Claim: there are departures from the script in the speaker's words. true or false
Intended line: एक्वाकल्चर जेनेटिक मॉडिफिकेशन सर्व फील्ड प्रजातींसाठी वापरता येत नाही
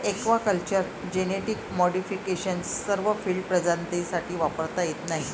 false